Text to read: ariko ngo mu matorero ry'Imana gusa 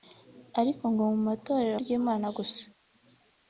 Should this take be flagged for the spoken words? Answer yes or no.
no